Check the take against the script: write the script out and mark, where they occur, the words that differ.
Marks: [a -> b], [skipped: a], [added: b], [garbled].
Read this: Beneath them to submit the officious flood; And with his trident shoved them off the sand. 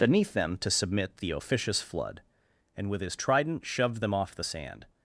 Beneath them to submit the officious flood; And with his trident shoved them off the sand.